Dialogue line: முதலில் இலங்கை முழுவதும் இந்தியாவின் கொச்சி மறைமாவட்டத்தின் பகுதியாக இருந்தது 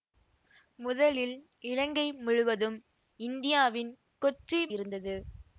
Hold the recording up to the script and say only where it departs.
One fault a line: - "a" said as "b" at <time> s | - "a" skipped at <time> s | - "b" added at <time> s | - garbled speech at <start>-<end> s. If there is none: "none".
- "மறைமாவட்டத்தின் பகுதியாக" skipped at 4.6 s